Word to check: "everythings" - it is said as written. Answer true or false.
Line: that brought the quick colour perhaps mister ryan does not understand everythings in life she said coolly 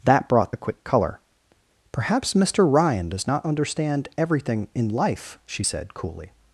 false